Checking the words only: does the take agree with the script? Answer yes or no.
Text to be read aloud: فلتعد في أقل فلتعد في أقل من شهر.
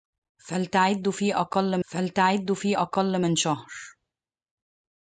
yes